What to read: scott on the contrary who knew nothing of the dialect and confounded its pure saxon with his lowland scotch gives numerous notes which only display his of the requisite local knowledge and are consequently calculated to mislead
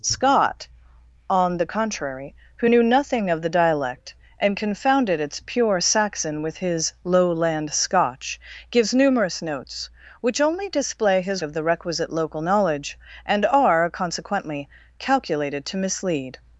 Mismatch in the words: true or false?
false